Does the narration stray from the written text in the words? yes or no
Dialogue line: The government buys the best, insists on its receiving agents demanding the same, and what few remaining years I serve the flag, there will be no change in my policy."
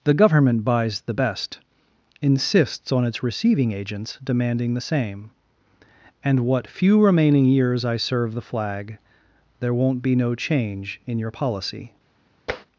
yes